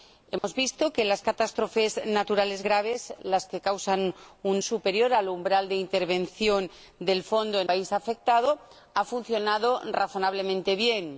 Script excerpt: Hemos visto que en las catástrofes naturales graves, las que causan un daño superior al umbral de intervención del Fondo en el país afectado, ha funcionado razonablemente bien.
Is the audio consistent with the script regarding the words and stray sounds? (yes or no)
no